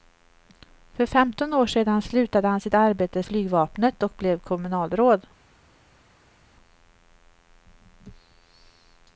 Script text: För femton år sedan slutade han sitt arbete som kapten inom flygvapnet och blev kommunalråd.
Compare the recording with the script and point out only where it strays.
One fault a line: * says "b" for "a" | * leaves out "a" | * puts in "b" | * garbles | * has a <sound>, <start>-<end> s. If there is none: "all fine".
* leaves out "som kapten inom"